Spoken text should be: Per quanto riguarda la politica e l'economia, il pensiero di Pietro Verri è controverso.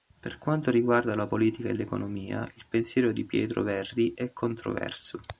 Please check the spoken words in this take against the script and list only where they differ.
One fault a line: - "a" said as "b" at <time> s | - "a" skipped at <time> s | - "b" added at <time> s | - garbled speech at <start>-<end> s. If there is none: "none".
none